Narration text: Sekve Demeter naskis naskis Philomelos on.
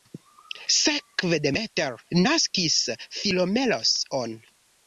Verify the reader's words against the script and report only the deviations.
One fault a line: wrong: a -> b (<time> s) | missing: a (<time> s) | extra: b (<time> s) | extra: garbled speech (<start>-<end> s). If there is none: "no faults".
missing: naskis (2.8 s)